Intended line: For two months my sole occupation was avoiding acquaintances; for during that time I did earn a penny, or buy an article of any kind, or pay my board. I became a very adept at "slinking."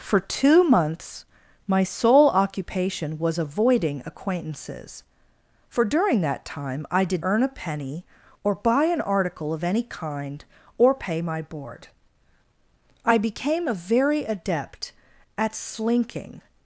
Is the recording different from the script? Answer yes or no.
no